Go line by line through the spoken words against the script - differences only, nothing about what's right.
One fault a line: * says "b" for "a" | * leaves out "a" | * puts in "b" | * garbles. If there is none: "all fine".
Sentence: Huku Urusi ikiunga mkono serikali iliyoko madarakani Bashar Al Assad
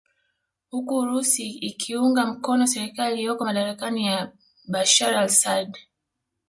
* puts in "ya"